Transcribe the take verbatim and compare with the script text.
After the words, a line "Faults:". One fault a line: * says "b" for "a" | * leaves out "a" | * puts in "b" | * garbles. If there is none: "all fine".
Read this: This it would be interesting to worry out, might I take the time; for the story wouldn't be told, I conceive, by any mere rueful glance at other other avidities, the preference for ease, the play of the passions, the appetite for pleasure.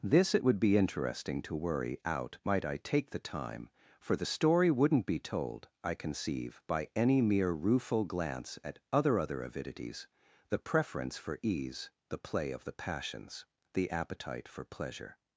This it would be interesting to worry out, might I take the time; for the story wouldn't be told, I conceive, by any mere rueful glance at other other avidities, the preference for ease, the play of the passions, the appetite for pleasure.
Faults:
all fine